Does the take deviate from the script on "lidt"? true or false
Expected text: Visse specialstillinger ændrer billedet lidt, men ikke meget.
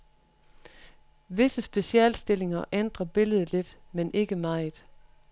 false